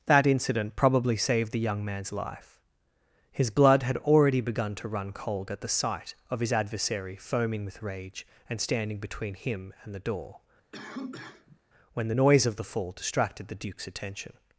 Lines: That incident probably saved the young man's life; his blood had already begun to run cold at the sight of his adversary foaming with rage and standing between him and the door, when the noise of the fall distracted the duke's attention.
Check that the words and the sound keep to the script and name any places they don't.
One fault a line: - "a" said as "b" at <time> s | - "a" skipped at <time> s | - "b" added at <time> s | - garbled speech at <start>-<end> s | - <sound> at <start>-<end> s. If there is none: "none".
- cough at 10.7-11.6 s